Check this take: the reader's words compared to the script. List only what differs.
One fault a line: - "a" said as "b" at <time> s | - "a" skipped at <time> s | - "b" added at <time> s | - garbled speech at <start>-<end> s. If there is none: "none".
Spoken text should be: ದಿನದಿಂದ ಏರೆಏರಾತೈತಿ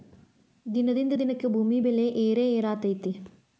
- "ದಿನಕ್ಕೆ ಭೂಮಿ ಬೆಲೆ" added at 1.1 s